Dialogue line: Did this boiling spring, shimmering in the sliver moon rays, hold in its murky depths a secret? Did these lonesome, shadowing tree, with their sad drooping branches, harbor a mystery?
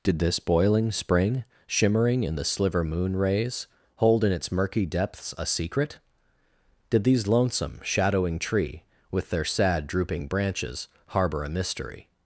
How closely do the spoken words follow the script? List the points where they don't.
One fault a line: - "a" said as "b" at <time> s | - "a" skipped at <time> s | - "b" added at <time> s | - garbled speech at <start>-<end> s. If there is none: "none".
none